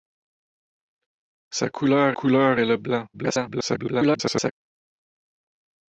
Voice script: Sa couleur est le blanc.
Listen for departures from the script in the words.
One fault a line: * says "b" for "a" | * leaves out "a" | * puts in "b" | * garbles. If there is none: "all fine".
* puts in "couleur"
* garbles